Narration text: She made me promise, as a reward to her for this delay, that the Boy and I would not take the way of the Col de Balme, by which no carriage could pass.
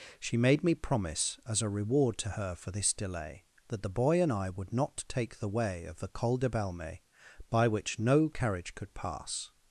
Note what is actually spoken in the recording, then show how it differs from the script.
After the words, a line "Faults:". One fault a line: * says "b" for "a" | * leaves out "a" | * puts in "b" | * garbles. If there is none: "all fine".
She made me promise, as a reward to her for this delay, that the Boy and I would not take the way of the Col de Balme, by which no carriage could pass.
Faults:
all fine